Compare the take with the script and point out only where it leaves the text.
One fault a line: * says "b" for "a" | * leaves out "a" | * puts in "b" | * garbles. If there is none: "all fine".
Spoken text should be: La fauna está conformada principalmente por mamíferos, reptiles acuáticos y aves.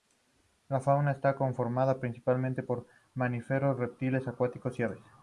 all fine